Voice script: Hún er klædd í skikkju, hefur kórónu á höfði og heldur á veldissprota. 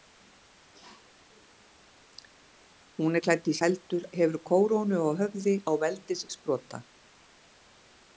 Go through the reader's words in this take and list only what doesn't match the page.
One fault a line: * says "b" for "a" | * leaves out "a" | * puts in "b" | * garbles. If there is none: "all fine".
* says "heldur" for "skikkju"
* leaves out "og heldur"